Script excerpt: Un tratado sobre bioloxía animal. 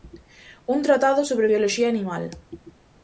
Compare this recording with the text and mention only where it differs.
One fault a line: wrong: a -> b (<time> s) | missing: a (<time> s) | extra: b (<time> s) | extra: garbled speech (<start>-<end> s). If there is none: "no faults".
no faults